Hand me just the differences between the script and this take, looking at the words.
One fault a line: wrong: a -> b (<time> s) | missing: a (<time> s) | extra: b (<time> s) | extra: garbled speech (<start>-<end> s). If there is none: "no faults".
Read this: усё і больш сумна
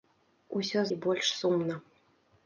no faults